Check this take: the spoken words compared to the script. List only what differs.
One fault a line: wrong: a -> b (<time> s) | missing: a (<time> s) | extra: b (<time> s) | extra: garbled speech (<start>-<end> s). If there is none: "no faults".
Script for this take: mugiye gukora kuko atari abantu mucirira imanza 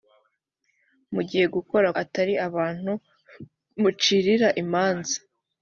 missing: kuko (1.9 s)